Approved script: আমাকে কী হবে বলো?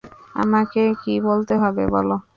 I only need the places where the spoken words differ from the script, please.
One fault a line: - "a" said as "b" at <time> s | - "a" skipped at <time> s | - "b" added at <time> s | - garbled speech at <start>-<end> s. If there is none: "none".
- "বলতে" added at 1.3 s